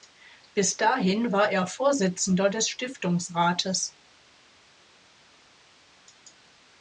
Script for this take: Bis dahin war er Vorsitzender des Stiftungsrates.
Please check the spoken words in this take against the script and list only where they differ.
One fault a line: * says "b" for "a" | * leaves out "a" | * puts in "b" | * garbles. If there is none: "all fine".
all fine